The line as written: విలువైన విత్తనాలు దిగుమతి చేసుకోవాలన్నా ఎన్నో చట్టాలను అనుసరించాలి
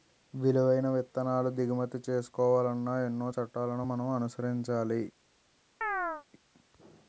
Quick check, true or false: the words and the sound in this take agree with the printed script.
false